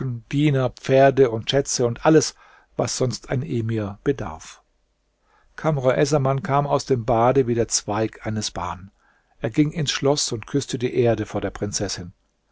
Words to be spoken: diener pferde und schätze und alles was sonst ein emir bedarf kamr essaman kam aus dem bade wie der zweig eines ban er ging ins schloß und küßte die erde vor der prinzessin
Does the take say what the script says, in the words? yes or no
yes